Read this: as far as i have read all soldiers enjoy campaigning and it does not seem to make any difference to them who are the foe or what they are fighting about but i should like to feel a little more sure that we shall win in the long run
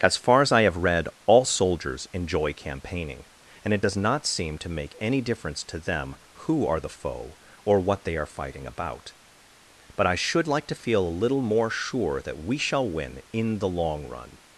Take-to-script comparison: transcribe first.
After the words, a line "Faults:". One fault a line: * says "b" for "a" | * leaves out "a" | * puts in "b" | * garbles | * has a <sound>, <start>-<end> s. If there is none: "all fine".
as far as i have read all soldiers enjoy campaigning and it does not seem to make any difference to them who are the foe or what they are fighting about but i should like to feel a little more sure that we shall win in the long run
Faults:
all fine